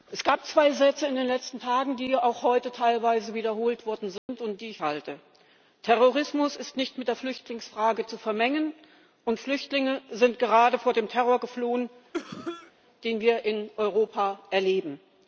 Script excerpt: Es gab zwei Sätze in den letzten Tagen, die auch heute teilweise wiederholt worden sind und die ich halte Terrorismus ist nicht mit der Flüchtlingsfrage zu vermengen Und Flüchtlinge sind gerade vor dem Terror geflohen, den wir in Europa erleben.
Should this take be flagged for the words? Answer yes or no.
no